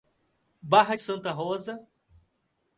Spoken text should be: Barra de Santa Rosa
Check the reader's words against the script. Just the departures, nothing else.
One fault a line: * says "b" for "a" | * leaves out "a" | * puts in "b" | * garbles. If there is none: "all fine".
all fine